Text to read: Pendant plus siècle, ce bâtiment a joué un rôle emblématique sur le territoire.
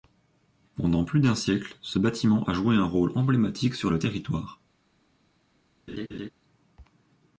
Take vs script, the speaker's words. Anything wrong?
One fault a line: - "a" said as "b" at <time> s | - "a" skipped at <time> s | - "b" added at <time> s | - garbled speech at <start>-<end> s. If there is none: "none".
- "d'un" added at 1.2 s